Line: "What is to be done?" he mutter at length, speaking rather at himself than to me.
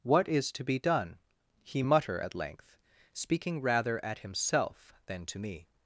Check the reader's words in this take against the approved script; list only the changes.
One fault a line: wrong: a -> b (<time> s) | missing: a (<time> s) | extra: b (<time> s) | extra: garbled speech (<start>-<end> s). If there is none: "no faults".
no faults